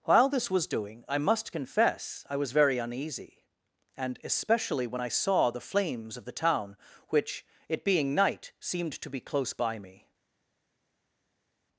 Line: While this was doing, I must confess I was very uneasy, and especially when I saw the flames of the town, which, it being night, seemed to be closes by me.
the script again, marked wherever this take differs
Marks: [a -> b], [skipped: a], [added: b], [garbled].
While this was doing, I must confess I was very uneasy, and especially when I saw the flames of the town, which, it being night, seemed to be [closes -> close] by me.